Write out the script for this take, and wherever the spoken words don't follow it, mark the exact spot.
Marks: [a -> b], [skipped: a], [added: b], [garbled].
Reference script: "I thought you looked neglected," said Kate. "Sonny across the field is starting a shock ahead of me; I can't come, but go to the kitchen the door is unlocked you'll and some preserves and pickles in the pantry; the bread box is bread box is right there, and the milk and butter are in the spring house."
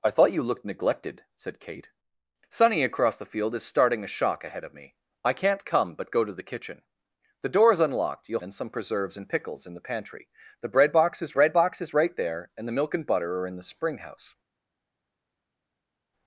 "I thought you looked neglected," said Kate. "Sonny across the field is starting a shock ahead of me; I can't come, but go to the kitchen the door is unlocked you'll and some preserves and pickles in the pantry; the bread box is bread box is right there, and the milk and butter are in the spring house."